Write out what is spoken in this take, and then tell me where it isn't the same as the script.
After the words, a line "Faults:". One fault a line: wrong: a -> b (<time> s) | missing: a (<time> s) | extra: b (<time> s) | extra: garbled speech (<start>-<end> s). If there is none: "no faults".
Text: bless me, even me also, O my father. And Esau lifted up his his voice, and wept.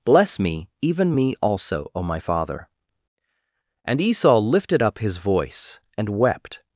bless me, even me also, O my father. And Esau lifted up his voice, and wept.
Faults:
missing: his (5.2 s)